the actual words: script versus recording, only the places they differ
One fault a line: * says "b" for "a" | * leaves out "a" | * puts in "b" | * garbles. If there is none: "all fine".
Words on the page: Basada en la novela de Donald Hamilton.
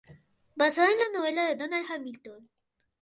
all fine